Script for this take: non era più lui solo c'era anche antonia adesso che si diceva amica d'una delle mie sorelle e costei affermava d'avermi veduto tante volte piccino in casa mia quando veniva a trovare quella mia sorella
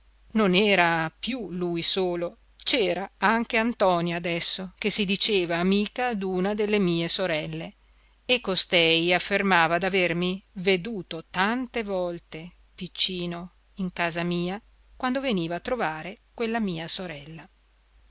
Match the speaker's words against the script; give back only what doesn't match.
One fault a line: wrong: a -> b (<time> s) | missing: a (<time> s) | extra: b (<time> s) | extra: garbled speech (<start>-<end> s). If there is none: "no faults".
no faults